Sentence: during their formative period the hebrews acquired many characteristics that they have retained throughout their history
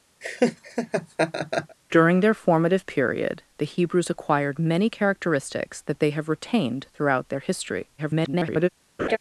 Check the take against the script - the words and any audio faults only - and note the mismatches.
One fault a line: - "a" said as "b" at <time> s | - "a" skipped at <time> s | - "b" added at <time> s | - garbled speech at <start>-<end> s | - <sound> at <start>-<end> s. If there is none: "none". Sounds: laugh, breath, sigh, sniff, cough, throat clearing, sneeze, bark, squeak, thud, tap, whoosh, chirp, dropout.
- laugh at 0.2-1.8 s
- garbled speech at 8.0-8.7 s
- laugh at 9.0-9.2 s